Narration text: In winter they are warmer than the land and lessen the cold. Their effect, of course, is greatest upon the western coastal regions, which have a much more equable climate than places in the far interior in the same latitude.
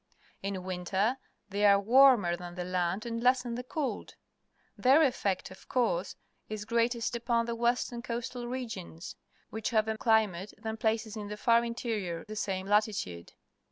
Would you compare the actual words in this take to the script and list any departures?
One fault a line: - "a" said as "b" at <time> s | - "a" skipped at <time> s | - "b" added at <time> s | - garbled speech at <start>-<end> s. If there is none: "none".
- "much more equable" skipped at 9.9 s
- "in" skipped at 12.3 s